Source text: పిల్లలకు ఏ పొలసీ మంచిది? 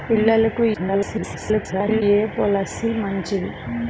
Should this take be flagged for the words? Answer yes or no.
yes